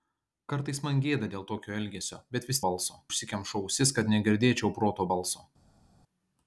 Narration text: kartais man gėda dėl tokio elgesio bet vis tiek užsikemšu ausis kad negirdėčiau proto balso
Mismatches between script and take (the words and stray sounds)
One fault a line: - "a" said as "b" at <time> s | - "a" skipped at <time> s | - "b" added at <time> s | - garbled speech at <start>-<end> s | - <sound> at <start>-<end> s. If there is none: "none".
- "tiek" said as "balso" at 2.7 s